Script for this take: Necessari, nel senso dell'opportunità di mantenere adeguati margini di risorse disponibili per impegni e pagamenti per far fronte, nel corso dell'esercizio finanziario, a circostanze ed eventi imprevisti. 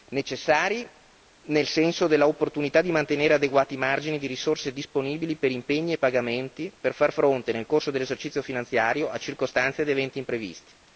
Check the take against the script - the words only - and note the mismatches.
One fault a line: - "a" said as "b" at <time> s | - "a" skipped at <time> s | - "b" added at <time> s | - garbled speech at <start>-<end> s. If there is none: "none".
none